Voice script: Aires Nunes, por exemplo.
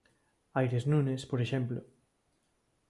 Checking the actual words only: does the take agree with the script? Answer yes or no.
yes